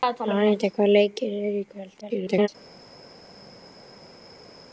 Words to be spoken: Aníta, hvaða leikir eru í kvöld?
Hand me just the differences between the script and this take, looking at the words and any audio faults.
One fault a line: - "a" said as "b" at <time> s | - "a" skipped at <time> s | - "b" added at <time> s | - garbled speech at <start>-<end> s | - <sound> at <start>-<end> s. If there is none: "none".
- garbled speech at 2.0-2.5 s